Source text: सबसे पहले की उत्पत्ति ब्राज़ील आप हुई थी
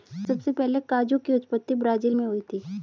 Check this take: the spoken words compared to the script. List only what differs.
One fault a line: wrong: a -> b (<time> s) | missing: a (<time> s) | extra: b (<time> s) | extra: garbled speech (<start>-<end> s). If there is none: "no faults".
extra: काजू (0.9 s)
wrong: आप -> मैं (2.1 s)